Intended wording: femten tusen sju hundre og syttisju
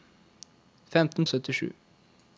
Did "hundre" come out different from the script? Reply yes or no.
yes